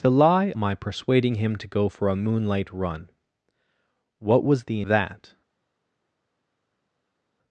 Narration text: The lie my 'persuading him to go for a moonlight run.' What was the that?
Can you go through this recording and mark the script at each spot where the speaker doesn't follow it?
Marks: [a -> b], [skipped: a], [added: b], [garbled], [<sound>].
The lie my 'persuading him to go for a moonlight run.' What was the that?